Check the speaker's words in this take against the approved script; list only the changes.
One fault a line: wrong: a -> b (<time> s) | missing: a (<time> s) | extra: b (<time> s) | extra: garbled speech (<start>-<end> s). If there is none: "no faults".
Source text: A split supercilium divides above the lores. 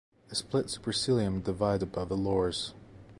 no faults